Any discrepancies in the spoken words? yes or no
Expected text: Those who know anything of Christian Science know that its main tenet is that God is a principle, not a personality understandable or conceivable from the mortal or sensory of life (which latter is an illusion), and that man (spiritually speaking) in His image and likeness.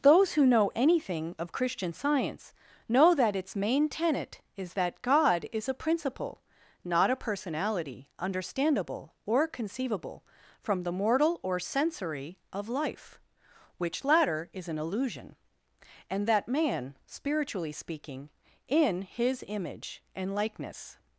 no